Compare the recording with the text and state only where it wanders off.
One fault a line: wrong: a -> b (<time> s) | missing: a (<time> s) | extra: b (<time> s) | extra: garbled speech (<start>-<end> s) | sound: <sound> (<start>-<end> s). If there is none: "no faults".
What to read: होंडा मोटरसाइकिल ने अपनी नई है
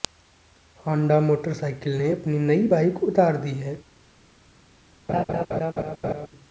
extra: बाइक उतार दी (2.7 s)
sound: laugh (5.1-6.3 s)